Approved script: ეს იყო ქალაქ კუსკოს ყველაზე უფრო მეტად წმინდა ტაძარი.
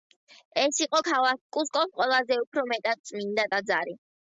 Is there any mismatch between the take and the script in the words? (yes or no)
no